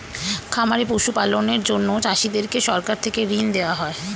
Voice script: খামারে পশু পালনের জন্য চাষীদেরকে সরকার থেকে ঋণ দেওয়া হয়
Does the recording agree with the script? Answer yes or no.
yes